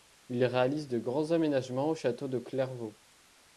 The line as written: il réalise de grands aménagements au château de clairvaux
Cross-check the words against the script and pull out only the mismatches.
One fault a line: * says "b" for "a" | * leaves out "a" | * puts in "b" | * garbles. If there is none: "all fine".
all fine